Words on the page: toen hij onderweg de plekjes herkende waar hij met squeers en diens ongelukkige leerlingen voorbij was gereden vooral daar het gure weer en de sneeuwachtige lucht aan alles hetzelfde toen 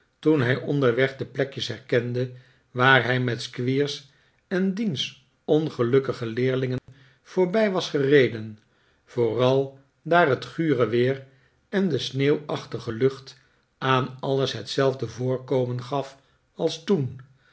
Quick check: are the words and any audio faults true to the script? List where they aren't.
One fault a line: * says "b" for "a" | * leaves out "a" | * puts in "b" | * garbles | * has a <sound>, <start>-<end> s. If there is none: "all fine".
* has a dropout, 6.8-6.9 s
* puts in "voorkomen gaf als"